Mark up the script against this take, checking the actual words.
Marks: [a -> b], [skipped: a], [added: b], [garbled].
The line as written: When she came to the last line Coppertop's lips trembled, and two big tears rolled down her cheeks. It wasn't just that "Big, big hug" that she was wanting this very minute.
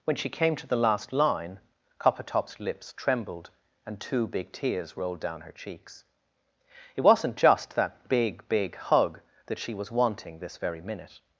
When she came to the last line Coppertop's lips trembled, and two big tears rolled down her cheeks. It wasn't just that "Big, big hug" that she was wanting this very minute.